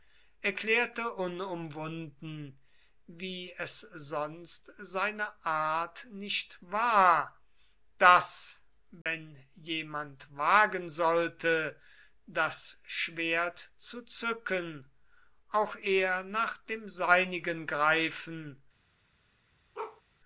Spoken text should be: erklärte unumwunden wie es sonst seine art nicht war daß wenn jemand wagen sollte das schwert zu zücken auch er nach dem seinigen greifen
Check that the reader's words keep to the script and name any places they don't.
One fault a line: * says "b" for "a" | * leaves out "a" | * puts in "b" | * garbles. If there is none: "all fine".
all fine